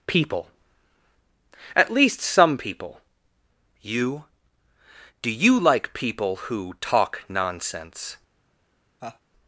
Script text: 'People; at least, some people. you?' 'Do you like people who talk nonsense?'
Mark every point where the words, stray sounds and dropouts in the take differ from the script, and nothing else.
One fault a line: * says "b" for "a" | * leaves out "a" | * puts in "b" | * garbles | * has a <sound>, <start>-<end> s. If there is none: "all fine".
* has a laugh, 9.0-9.2 s